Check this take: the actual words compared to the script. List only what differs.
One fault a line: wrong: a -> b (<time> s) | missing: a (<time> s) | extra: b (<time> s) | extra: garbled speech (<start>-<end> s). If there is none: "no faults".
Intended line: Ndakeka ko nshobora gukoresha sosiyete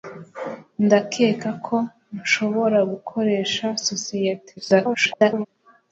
extra: garbled speech (4.6-5.5 s)